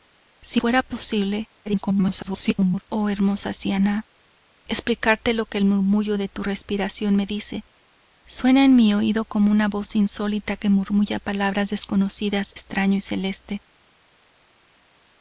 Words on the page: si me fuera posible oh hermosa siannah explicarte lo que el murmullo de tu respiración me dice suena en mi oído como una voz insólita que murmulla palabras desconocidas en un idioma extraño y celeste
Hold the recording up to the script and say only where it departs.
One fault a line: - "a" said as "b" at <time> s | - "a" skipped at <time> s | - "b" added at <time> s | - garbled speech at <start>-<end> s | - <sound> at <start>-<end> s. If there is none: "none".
- "me" skipped at 0.6 s
- garbled speech at 1.7-2.8 s
- "en un idioma" skipped at 12.5 s